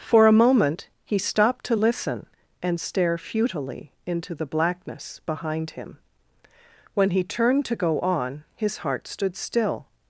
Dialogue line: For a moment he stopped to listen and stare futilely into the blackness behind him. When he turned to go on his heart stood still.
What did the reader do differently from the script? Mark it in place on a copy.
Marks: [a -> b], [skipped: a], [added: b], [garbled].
For a moment he stopped to listen and stare futilely into the blackness behind him. When he turned to go on his heart stood still.